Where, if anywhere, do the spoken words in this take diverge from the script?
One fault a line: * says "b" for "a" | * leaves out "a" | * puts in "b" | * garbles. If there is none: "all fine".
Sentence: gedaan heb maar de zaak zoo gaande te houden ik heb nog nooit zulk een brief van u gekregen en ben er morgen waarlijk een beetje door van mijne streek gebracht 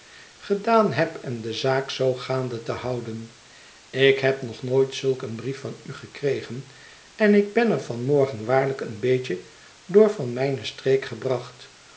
* says "en" for "maar"
* puts in "ik"
* puts in "van"